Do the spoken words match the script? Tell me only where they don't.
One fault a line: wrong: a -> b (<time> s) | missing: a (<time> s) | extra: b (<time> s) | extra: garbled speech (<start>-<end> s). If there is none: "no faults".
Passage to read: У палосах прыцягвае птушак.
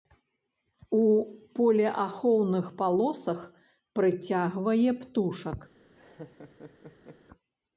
extra: полеахоўных (1.6 s)